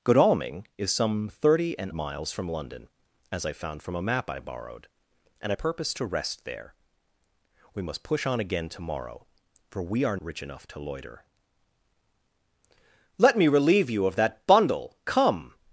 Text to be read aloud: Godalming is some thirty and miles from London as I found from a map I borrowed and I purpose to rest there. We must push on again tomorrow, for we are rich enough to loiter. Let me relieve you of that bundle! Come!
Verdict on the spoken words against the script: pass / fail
pass